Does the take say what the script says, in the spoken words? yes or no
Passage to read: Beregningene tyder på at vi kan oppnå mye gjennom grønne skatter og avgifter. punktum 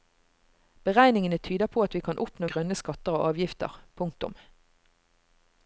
no